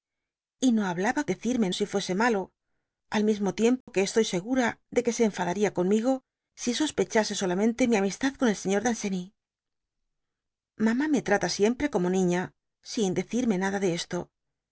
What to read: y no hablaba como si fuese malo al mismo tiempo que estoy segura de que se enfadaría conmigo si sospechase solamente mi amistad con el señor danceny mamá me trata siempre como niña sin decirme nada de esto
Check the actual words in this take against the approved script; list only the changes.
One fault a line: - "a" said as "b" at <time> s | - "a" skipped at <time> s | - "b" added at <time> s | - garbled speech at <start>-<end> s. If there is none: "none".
- "como" said as "decirme" at 1.3 s